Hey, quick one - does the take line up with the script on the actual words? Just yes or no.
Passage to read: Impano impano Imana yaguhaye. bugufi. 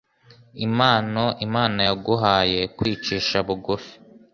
no